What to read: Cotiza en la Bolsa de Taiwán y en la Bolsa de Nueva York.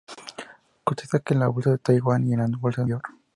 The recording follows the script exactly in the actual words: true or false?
false